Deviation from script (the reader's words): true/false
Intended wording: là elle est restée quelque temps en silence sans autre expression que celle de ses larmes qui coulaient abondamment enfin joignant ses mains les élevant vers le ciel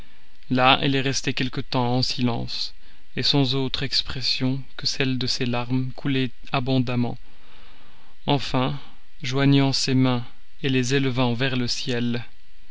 true